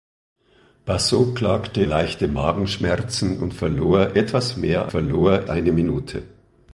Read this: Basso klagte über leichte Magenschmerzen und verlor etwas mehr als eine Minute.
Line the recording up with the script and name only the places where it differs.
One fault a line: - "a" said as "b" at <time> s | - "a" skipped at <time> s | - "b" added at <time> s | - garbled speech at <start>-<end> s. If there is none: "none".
- "über" skipped at 1.8 s
- "als" said as "verlor" at 4.9 s